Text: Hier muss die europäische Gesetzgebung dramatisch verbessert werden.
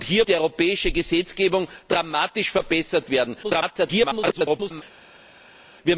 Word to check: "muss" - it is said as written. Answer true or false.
false